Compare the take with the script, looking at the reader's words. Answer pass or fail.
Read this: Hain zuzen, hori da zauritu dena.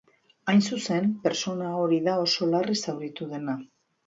fail